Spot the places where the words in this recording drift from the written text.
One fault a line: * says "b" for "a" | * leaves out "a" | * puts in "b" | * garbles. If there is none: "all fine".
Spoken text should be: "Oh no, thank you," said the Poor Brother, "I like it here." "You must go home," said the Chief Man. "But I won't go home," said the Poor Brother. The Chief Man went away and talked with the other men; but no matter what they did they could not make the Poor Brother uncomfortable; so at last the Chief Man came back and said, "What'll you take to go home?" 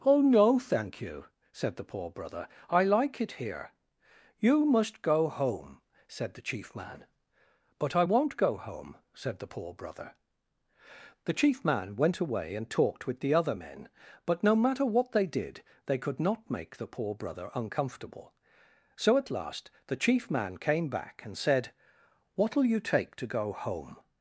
all fine